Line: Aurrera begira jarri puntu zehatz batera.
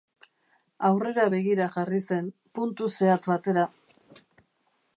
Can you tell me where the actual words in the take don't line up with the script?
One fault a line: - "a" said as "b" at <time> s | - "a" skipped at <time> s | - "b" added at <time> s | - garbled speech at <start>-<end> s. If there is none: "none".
- "zen" added at 2.1 s